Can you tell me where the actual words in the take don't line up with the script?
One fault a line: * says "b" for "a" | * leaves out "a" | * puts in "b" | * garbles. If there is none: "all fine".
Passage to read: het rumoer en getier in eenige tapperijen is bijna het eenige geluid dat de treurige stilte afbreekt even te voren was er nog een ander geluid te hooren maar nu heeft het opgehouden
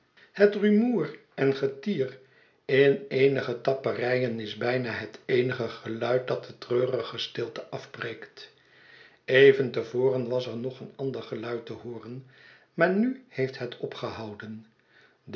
all fine